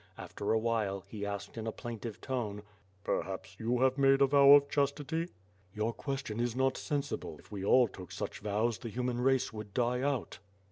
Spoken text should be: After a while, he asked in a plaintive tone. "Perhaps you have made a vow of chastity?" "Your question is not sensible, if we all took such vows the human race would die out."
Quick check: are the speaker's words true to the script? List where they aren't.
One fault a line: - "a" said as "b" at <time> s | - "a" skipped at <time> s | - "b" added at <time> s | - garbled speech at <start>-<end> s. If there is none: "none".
none